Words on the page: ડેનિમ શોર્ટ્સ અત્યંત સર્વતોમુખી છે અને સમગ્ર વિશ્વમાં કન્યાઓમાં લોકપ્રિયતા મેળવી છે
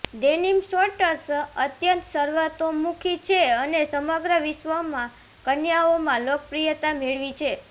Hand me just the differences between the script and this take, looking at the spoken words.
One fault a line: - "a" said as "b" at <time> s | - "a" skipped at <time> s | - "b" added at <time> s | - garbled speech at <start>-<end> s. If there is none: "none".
none